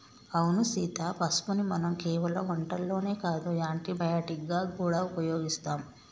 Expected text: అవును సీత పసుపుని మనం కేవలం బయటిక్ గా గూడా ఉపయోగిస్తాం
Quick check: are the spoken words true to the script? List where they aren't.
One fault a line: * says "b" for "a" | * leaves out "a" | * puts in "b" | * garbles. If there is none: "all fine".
* puts in "వంటల్లోనే కాదు యాంటీ"